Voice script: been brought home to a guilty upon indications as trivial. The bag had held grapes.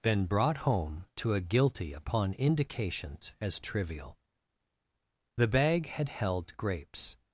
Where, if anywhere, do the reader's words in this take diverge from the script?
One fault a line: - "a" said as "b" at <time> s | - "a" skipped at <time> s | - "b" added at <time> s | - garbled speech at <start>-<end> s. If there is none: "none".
none